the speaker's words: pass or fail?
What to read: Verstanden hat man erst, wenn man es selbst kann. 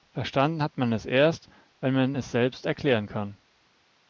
fail